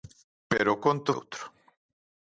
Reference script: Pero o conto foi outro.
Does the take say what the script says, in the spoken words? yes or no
no